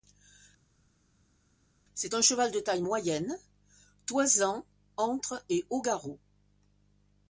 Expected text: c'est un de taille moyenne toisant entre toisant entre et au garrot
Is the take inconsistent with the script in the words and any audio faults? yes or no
yes